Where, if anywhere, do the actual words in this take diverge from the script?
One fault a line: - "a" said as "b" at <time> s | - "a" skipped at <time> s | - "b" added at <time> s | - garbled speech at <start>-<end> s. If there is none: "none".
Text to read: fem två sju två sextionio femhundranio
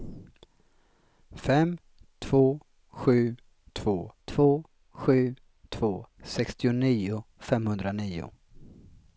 - "två sju två" added at 4.3 s